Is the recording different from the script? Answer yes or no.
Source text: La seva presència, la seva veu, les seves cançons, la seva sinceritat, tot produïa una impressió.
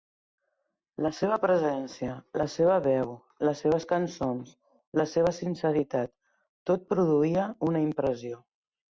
no